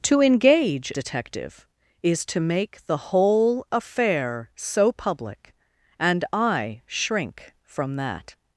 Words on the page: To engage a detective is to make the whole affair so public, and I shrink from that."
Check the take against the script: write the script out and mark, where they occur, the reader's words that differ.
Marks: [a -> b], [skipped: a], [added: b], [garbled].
To engage [skipped: a] detective is to make the whole affair so public, and I shrink from that."